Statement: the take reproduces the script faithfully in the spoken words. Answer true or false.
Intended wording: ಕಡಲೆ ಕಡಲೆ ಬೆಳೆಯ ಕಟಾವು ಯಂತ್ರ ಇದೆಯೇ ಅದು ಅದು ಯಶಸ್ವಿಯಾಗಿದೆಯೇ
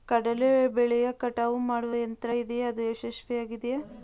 false